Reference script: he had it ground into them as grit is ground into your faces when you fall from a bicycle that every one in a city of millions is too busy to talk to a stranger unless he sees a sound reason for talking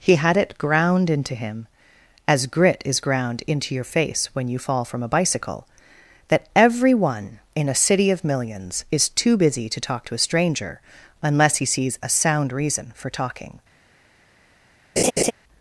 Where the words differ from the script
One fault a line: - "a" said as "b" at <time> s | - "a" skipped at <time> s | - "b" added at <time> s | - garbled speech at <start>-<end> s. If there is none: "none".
- "them" said as "him" at 1.4 s
- "faces" said as "face" at 3.8 s